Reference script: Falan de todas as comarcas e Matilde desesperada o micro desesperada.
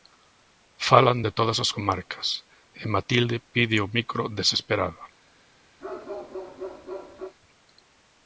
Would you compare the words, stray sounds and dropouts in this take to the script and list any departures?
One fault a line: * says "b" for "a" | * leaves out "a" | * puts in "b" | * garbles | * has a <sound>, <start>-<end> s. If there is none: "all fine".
* says "pide" for "desesperada"
* has a bark, 5.8-7.4 s